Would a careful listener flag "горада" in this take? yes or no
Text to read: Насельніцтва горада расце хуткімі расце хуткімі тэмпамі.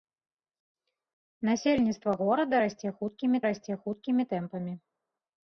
no